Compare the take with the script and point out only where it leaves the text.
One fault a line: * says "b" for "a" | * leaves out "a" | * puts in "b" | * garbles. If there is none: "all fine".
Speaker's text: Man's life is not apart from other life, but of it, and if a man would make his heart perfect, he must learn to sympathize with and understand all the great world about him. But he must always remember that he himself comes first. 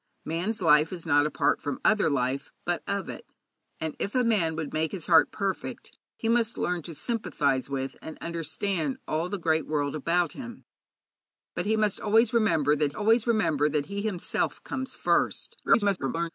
* puts in "always remember that"
* garbles